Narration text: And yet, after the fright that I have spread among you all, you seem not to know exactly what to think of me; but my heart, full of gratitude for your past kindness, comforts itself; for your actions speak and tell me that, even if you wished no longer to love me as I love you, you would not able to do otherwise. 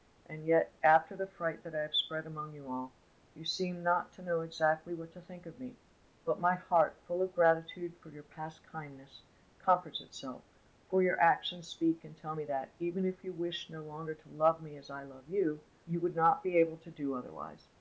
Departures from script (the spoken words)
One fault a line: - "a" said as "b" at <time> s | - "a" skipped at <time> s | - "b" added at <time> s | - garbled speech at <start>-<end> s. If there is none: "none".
- "be" added at 16.4 s